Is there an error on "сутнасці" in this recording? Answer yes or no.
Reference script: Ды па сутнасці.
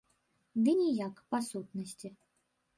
no